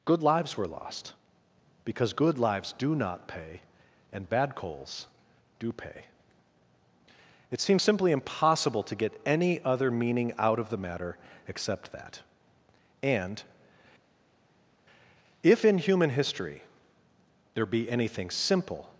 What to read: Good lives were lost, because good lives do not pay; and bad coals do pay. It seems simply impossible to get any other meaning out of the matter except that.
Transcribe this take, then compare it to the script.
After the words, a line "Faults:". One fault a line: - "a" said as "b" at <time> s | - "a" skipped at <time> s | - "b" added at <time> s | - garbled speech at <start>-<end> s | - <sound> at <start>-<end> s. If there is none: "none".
Good lives were lost, because good lives do not pay; and bad coals do pay. It seems simply impossible to get any other meaning out of the matter except that. And, if in human history there be anything simple
Faults:
- "And if in human history there be anything simple" added at 13.0 s